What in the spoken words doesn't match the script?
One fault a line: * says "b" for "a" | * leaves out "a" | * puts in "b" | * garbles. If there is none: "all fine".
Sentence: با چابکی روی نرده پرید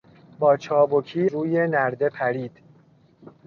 all fine